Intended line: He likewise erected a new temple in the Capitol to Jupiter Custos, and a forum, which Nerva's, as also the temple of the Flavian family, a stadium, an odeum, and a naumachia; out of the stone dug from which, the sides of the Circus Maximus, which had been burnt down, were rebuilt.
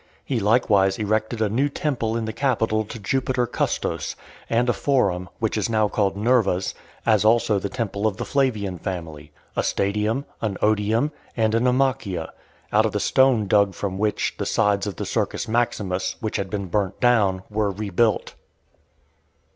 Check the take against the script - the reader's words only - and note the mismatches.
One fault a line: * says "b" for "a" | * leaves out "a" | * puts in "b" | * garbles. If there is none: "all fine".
* puts in "is now called"